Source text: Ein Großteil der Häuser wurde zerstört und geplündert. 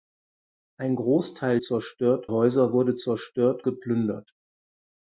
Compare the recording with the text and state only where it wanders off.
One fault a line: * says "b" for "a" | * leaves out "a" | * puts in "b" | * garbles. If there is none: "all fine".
* says "zerstört" for "der"
* leaves out "und"